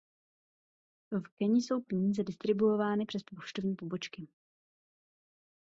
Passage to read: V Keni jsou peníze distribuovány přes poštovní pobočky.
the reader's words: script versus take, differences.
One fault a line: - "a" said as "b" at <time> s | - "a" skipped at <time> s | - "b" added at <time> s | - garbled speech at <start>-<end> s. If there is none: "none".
none